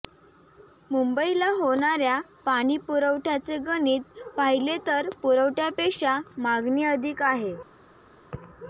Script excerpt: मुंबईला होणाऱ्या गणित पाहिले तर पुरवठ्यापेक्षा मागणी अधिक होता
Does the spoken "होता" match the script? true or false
false